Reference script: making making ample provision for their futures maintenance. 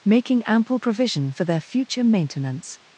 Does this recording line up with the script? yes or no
no